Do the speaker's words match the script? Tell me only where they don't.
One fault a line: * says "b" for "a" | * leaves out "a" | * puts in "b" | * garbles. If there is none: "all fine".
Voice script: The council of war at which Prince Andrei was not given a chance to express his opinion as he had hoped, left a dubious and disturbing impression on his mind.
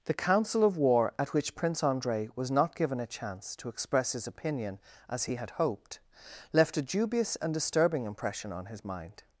all fine